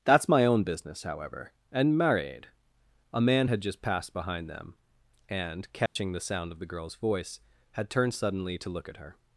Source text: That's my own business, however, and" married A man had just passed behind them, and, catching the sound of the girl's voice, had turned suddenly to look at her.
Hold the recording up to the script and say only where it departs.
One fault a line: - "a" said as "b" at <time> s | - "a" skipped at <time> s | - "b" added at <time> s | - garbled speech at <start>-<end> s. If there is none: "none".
none